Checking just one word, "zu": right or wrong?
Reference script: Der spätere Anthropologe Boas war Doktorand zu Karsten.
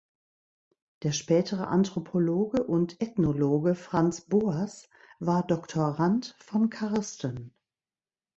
wrong